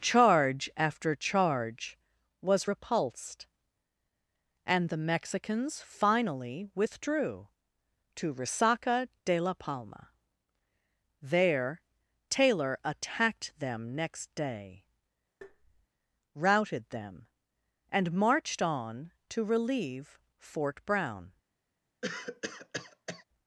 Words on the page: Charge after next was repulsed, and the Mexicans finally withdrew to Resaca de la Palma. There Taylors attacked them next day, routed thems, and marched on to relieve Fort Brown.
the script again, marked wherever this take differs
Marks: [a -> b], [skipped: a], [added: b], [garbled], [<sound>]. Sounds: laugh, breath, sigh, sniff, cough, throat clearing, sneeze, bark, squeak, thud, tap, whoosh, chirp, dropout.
Charge after [next -> charge] was repulsed, and the Mexicans finally withdrew to Resaca de la Palma. There [Taylors -> Taylor] attacked them next day, [tap] routed [thems, -> them] and marched on to relieve Fort Brown. [cough]